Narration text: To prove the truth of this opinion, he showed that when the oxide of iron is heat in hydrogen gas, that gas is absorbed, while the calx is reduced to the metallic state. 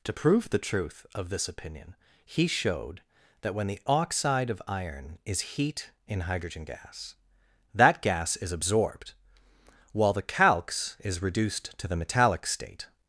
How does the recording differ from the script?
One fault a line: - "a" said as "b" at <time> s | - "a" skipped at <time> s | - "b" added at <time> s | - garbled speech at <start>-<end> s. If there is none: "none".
none